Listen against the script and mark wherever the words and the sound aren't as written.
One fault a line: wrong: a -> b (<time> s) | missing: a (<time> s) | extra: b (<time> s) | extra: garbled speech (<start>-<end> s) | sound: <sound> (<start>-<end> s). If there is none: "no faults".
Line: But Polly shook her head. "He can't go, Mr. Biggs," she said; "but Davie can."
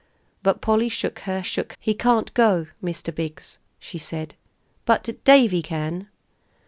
wrong: head -> shook (1.4 s)